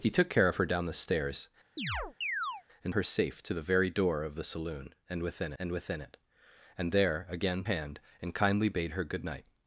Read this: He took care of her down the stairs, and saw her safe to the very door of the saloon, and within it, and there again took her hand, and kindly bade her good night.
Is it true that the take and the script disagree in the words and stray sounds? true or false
true